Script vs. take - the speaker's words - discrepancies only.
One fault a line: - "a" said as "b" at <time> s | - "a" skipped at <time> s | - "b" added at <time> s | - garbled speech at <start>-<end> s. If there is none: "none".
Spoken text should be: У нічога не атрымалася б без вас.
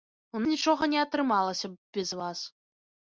none